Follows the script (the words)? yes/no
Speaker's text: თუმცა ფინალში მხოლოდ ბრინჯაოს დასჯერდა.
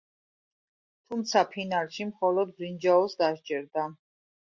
yes